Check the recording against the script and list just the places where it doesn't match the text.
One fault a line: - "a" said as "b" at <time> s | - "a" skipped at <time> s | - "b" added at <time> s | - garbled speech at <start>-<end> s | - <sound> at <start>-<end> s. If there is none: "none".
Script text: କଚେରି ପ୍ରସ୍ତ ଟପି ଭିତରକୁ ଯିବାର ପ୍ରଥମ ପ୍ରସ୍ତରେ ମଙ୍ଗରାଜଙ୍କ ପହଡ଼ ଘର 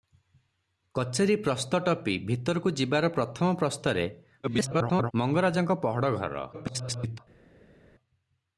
- garbled speech at 4.4-5.1 s
- garbled speech at 6.5-7.2 s